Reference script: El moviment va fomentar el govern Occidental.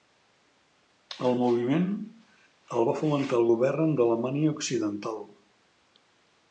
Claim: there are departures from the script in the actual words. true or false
true